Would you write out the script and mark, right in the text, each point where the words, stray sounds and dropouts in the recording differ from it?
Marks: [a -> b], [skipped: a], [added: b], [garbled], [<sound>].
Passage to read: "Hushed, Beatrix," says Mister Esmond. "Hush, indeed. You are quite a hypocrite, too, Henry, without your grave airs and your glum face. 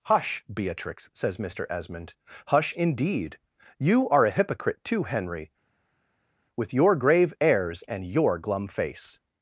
["Hushed, -> Hush] Beatrix," says Mister Esmond. "Hush, indeed. You are [skipped: quite] a hypocrite, too, Henry, [without -> with] your grave airs and your glum face.